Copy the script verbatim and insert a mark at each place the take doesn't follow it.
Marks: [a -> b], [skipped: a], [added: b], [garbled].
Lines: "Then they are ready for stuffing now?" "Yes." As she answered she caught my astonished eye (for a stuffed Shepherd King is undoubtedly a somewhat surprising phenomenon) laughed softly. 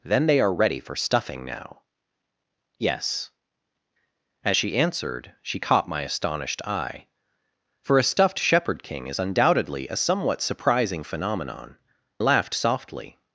"Then they are ready for stuffing now?" "Yes." As she answered she caught my astonished eye (for a stuffed Shepherd King is undoubtedly a somewhat surprising phenomenon) laughed softly.